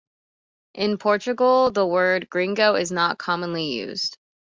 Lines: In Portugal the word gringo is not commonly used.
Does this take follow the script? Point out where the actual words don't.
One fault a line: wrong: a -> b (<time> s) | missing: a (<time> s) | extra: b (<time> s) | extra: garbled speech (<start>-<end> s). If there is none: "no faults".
no faults